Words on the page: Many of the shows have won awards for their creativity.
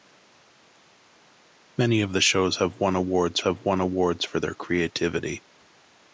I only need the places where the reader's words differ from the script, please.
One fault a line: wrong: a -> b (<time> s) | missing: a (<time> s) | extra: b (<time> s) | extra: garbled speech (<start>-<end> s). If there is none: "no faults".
extra: have won awards (3.4 s)